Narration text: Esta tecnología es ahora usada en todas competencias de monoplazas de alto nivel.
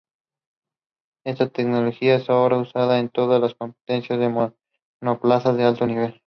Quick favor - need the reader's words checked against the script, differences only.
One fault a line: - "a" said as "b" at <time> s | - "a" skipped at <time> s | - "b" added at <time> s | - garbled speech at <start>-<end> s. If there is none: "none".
- "las" added at 3.4 s